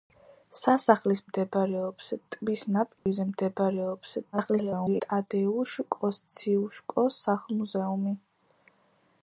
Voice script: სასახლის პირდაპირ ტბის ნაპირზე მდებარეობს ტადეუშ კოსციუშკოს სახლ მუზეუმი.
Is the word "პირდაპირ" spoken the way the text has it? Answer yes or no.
no